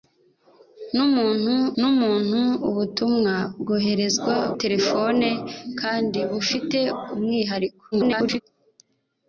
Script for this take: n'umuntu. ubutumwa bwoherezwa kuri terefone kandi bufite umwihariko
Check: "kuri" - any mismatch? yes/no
yes